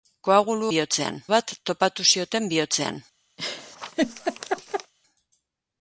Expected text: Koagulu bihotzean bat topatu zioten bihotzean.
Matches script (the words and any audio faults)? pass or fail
fail